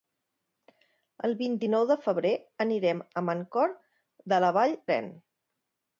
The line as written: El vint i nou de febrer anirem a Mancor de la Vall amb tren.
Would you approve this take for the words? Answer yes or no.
no